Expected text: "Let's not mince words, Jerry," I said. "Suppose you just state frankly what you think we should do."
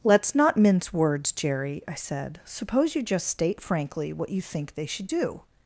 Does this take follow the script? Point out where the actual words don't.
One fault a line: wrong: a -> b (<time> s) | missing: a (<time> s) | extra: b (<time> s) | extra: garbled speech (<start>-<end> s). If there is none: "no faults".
wrong: we -> they (4.8 s)